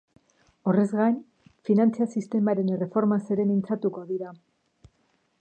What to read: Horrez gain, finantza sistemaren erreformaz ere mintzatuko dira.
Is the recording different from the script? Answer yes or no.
no